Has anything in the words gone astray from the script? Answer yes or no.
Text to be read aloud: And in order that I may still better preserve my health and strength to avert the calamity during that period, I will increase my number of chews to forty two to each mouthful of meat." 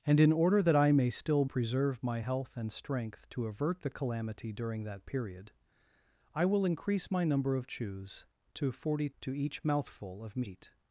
yes